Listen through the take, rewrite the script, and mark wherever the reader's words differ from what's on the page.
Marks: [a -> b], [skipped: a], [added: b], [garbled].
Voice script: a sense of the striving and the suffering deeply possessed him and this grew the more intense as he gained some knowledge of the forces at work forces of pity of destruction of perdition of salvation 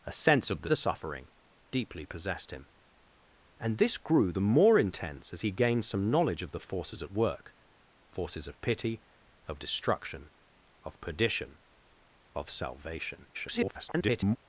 a sense of the [skipped: striving and] the suffering deeply possessed him and this grew the more intense as he gained some knowledge of the forces at work forces of pity of destruction of perdition of salvation [garbled]